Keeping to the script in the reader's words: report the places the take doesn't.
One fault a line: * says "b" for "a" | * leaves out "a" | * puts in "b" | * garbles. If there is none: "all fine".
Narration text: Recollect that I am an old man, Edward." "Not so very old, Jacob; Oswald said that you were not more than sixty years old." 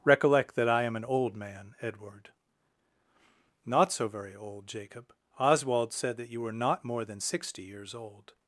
all fine